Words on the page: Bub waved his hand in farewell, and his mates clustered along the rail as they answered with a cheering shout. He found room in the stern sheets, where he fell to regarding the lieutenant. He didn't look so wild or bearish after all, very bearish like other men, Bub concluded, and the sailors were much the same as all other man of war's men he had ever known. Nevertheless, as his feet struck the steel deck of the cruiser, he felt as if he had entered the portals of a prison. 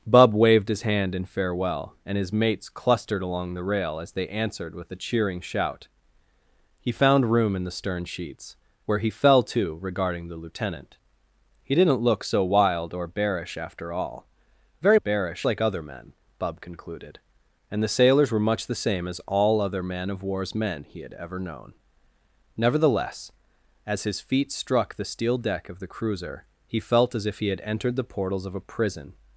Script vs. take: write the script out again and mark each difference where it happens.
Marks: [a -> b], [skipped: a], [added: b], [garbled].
Bub waved his hand in farewell, and his mates clustered along the rail as they answered with a cheering shout. He found room in the stern sheets, where he fell to regarding the lieutenant. He didn't look so wild or bearish after all, very bearish like other men, Bub concluded, and the sailors were much the same as all other man of war's men he had ever known. Nevertheless, as his feet struck the steel deck of the cruiser, he felt as if he had entered the portals of a prison.